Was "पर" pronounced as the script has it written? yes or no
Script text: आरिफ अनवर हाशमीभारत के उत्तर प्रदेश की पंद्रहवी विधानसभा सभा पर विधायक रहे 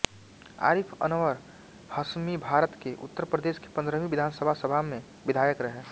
no